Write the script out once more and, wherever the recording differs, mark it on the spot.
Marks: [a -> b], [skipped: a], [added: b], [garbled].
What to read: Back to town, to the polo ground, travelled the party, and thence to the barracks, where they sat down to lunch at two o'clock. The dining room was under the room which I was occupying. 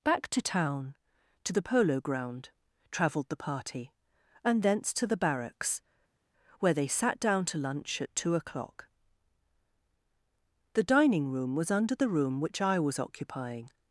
Back to town, to the polo ground, travelled the party, and thence to the barracks, where they sat down to lunch at two o'clock. The dining room was under the room which I was occupying.